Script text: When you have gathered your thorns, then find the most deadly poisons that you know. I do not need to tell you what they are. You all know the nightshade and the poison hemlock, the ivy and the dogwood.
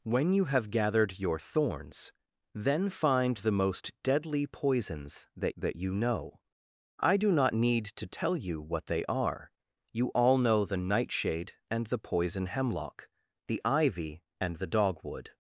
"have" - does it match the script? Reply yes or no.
yes